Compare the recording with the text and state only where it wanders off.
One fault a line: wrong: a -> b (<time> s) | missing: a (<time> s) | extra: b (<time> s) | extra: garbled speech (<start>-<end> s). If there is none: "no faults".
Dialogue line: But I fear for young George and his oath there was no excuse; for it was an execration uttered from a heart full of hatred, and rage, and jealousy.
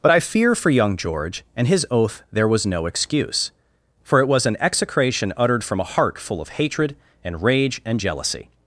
no faults